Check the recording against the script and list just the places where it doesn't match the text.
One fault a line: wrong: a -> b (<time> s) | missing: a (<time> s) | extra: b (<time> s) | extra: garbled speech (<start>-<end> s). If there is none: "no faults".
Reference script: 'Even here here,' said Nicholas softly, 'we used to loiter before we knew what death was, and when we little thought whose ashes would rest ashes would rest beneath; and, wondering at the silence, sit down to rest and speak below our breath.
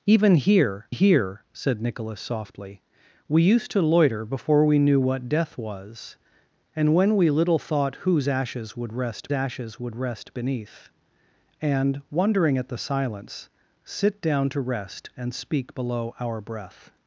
no faults